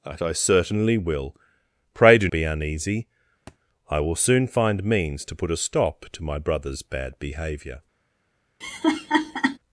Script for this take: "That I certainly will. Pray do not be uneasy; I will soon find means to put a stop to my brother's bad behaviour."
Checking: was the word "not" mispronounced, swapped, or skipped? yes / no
yes